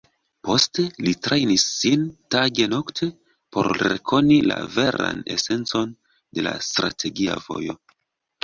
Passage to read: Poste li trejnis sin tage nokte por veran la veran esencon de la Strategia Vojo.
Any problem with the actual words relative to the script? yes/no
yes